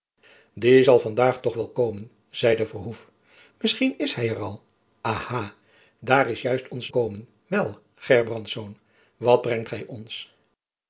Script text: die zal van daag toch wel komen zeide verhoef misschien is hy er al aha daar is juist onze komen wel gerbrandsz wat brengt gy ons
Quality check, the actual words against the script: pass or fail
pass